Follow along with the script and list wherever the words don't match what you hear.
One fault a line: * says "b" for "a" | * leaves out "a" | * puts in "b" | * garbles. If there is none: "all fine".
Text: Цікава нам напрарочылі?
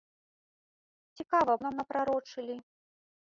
all fine